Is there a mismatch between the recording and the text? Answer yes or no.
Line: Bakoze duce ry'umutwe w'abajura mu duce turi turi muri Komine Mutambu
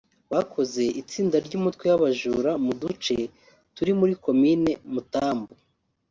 yes